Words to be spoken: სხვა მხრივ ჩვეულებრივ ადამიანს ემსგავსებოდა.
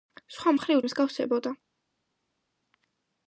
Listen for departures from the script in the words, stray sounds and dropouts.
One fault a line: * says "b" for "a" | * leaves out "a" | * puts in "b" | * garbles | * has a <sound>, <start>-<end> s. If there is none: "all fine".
* leaves out "ჩვეულებრივ ადამიანს"